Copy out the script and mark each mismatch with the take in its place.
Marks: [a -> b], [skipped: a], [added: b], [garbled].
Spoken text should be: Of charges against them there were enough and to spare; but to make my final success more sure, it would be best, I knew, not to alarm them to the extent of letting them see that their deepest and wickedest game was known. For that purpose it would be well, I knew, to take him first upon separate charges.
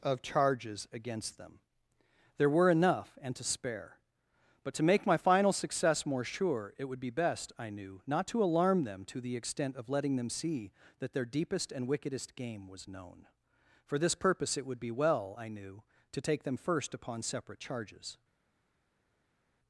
Of charges against them there were enough and to spare; but to make my final success more sure, it would be best, I knew, not to alarm them to the extent of letting them see that their deepest and wickedest game was known. For [that -> this] purpose it would be well, I knew, to take [him -> them] first upon separate charges.